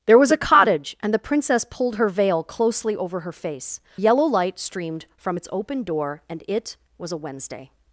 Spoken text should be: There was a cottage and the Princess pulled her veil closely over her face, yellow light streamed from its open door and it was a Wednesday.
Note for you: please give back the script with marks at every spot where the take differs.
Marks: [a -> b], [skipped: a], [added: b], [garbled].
There was a cottage and the Princess pulled her veil closely over her face, yellow light streamed from its open door and it was a Wednesday.